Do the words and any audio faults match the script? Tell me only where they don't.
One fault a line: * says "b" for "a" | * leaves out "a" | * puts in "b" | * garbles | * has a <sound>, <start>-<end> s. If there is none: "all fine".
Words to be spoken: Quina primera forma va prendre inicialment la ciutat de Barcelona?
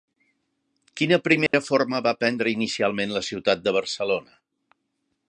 * has a dropout, 1.5-1.5 s